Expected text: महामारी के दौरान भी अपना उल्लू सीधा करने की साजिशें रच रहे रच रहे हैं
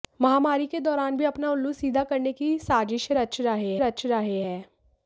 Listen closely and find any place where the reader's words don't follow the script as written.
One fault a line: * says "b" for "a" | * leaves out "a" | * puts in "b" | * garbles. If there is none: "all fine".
all fine